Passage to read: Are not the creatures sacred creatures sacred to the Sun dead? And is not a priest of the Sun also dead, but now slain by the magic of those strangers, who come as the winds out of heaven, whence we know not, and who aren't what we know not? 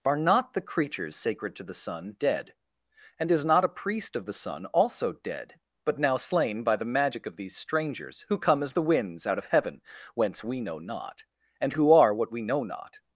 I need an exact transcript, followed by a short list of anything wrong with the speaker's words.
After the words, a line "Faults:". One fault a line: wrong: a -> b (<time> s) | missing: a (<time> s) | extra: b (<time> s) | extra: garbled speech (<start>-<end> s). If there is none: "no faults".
Are not the creatures sacred to the Sun dead? And is not a priest of the Sun also dead, but now slain by the magic of these strangers, who come as the winds out of heaven, whence we know not, and who are what we know not?
Faults:
missing: creatures sacred (1.6 s)
wrong: those -> these (7.3 s)
wrong: aren't -> are (11.9 s)